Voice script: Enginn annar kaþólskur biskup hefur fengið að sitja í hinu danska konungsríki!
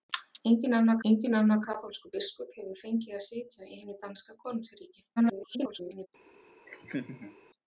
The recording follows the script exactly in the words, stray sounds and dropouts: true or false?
false